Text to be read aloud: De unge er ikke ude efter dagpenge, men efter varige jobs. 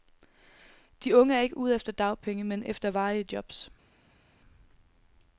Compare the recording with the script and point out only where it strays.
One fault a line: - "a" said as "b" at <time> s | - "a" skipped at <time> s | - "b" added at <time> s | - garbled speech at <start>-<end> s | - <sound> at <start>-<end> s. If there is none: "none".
none